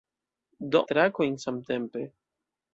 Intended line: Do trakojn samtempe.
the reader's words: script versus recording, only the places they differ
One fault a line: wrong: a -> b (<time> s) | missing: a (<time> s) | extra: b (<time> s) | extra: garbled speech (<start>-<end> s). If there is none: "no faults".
no faults